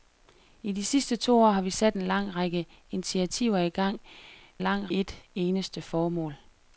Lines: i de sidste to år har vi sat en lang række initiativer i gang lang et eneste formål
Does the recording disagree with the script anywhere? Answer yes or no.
no